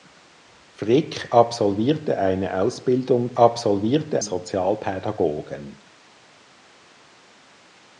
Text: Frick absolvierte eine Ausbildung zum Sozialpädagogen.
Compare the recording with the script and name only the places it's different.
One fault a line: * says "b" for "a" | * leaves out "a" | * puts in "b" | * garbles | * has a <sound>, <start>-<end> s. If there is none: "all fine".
* says "absolvierte" for "zum"